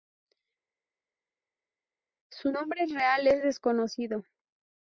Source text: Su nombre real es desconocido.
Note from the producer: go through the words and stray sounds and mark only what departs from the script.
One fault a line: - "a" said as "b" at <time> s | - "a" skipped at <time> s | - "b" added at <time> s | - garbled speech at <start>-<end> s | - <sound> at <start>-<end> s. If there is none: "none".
none